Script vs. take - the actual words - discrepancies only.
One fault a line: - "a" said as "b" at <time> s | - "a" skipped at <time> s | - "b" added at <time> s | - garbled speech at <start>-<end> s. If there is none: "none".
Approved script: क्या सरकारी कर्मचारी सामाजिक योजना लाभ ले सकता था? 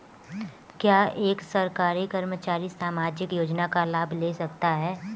- "एक" added at 1.2 s
- "का" added at 3.7 s
- "था" said as "है" at 4.8 s